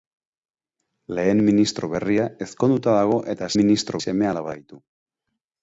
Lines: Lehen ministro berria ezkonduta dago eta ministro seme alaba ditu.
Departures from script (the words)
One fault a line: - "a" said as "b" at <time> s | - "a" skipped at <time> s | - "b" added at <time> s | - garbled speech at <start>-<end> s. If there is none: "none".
none